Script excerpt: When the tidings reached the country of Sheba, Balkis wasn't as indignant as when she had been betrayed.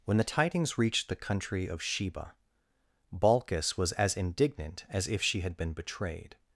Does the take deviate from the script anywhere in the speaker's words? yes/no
yes